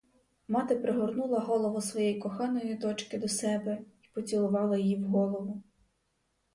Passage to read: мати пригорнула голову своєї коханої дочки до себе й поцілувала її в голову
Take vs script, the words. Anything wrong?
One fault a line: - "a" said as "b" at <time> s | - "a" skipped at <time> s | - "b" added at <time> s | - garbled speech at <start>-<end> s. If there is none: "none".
none